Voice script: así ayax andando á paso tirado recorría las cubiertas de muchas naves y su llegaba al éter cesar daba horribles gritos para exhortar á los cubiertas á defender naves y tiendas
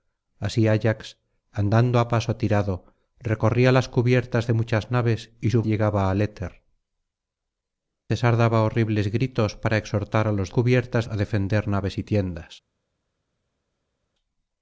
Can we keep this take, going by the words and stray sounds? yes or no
yes